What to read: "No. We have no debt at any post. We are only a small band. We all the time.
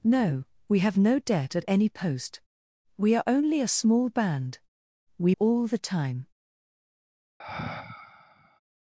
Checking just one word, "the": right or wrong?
right